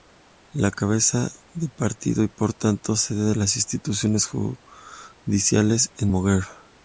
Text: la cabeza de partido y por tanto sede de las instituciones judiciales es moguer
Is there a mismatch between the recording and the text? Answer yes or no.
no